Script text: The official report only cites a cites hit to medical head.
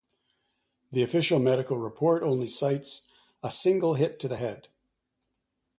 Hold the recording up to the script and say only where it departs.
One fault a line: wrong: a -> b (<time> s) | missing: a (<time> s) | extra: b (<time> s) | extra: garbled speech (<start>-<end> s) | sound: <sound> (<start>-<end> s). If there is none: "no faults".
extra: medical (1.4 s)
wrong: cites -> single (3.5 s)
wrong: medical -> the (4.3 s)